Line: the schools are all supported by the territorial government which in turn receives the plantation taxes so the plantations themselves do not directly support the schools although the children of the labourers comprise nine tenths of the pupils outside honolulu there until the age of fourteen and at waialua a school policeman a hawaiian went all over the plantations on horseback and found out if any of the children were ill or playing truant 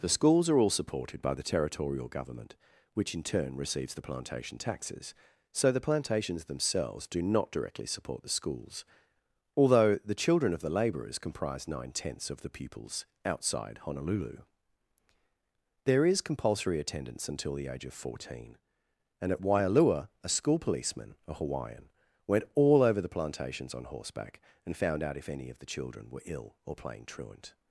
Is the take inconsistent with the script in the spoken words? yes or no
yes